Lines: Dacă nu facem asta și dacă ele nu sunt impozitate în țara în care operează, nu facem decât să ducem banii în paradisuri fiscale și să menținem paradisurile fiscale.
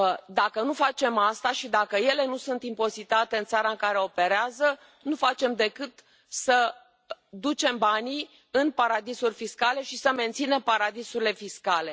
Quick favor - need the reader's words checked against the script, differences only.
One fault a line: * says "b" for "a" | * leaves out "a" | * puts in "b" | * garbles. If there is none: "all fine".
all fine